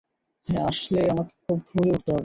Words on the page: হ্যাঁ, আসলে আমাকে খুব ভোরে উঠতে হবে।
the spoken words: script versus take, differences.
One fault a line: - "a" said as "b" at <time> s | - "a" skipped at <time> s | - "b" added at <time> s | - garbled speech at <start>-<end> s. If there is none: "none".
none